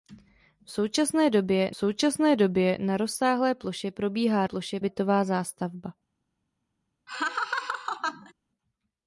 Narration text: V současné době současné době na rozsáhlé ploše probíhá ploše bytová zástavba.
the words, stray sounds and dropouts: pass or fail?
fail